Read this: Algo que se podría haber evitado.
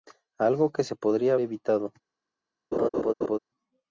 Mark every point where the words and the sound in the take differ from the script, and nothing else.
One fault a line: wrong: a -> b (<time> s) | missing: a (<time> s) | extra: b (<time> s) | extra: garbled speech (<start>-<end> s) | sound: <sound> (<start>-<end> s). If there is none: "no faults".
missing: haber (1.4 s)
sound: laugh (2.7-3.4 s)